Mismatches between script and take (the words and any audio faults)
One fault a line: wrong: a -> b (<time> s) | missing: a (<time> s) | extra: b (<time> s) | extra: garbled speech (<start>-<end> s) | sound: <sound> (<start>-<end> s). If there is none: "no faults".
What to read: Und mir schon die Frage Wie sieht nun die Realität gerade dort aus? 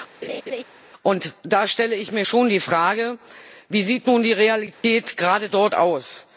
sound: laugh (0.2-0.6 s)
extra: da stelle ich (1.4 s)
sound: dropout (4.7-4.8 s)